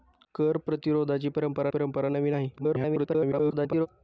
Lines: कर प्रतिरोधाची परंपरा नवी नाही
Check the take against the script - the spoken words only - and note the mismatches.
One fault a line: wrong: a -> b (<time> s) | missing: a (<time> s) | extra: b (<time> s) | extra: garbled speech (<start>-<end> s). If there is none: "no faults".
extra: परंपरा (1.7 s)
extra: garbled speech (2.6-3.9 s)